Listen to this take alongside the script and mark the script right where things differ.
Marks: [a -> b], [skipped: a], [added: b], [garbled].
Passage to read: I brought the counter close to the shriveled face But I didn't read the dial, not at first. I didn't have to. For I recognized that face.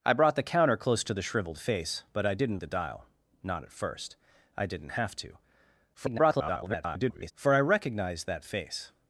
I brought the counter close to the shriveled face But I didn't [skipped: read] the dial, not at first. I didn't have to. [garbled] For I recognized that face.